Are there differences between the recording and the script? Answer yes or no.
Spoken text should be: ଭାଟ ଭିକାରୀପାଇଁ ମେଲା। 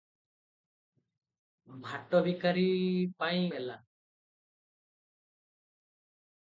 no